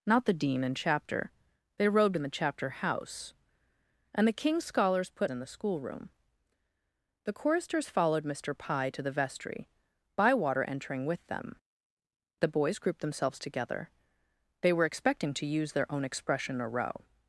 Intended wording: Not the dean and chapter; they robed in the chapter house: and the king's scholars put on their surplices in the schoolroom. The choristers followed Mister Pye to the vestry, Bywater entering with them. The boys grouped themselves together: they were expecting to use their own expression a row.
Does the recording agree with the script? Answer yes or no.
no